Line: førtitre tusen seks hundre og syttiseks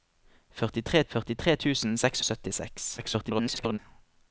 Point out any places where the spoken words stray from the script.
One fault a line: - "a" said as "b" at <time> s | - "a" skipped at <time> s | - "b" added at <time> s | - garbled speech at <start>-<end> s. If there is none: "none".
- "førtitre" added at 1.1 s
- "hundre" skipped at 2.2 s
- garbled speech at 3.0-3.8 s